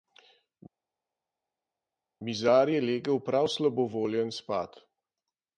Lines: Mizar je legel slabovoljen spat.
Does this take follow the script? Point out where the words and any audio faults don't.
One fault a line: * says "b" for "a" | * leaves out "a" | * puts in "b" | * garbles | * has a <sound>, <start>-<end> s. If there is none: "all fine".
* puts in "prav"